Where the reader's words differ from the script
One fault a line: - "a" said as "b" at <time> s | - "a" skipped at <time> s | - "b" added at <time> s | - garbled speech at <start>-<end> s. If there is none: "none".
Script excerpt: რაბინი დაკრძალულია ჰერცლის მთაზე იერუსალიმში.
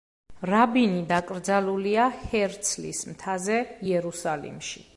none